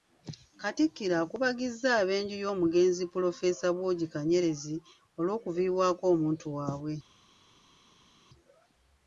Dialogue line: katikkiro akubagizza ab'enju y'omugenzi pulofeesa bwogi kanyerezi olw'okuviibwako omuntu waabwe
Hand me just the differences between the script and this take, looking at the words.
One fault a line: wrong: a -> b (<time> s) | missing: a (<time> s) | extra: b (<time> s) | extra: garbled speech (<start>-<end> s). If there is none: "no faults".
no faults